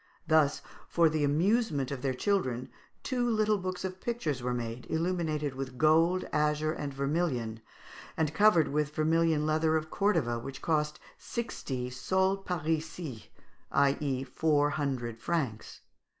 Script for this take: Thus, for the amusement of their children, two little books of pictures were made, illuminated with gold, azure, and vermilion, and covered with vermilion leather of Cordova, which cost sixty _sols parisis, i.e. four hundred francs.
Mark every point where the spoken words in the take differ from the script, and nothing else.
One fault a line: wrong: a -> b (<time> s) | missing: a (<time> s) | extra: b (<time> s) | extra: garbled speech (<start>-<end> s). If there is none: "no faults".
no faults